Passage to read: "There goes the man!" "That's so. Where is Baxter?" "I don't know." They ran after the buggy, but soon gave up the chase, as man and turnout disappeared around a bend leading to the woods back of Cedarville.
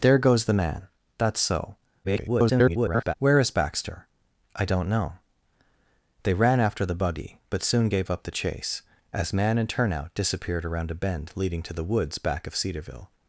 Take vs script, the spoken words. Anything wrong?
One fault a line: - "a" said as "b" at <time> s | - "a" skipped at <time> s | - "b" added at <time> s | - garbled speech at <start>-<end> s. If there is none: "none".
- garbled speech at 2.0-3.1 s